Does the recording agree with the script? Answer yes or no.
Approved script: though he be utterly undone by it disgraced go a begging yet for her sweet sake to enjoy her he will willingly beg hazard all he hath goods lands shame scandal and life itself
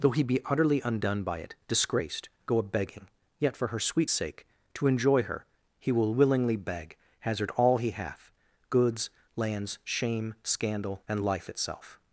yes